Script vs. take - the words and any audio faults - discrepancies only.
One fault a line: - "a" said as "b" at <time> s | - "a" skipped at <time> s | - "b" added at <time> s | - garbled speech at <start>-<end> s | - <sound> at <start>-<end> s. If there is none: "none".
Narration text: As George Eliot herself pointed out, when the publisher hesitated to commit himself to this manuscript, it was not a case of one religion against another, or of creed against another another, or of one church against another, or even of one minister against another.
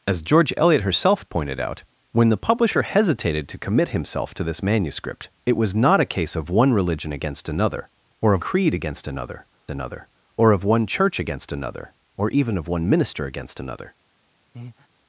- breath at 14.5-14.9 s